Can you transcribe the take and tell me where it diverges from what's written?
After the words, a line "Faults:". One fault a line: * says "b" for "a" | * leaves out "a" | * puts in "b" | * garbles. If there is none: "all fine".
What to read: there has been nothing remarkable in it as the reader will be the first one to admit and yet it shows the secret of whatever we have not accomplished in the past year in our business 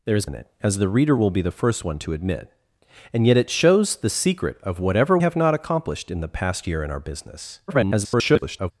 there has in it as the reader will be the first one to admit and yet it shows the secret of whatever have not accomplished in the past year in our business [garbled]
Faults:
* leaves out "been nothing remarkable"
* leaves out "we"
* garbles